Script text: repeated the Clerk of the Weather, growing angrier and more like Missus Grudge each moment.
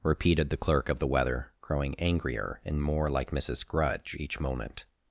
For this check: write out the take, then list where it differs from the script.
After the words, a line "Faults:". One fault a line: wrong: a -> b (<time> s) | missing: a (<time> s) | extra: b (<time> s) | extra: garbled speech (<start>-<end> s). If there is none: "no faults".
repeated the Clerk of the Weather, growing angrier and more like Missus Grudge each moment.
Faults:
no faults